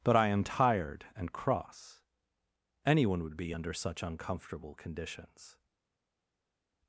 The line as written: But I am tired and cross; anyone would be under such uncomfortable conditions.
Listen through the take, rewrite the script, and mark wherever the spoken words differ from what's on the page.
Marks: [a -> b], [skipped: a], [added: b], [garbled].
But I am tired and cross; anyone would be under such uncomfortable conditions.